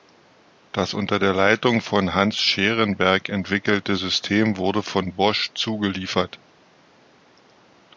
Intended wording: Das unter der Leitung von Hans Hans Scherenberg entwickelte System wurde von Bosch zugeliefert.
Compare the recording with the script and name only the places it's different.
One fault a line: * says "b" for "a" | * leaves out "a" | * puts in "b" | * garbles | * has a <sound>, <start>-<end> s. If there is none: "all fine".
* leaves out "Hans"